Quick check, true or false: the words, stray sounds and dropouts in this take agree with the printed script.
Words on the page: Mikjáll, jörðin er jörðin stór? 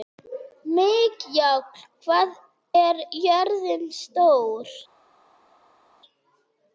false